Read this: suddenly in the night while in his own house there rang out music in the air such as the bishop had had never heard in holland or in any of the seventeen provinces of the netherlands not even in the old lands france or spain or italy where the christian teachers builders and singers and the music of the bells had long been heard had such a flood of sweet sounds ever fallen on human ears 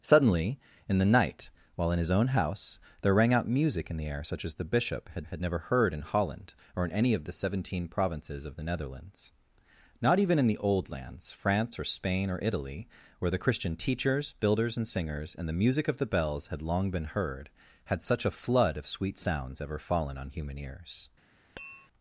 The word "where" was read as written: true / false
true